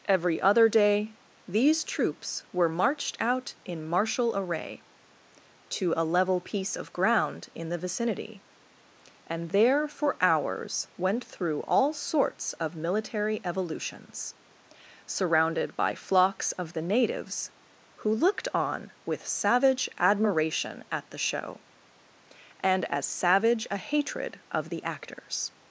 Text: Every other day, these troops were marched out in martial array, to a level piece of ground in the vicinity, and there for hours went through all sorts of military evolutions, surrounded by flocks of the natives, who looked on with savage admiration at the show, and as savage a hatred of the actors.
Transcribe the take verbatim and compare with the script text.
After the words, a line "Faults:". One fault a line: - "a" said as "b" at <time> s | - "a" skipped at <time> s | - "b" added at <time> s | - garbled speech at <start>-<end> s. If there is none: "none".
Every other day, these troops were marched out in martial array, to a level piece of ground in the vicinity, and there for hours went through all sorts of military evolutions, surrounded by flocks of the natives, who looked on with savage admiration at the show, and as savage a hatred of the actors.
Faults:
none